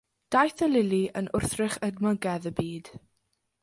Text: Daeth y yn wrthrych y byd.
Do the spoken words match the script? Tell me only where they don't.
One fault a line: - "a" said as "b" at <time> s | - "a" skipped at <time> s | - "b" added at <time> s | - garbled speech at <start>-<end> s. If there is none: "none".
- "lili" added at 0.7 s
- "edmygedd" added at 1.9 s